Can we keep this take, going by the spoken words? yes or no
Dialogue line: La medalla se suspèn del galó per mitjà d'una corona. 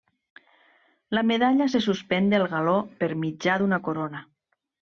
yes